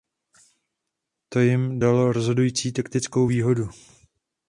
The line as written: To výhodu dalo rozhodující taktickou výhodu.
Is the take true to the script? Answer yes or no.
no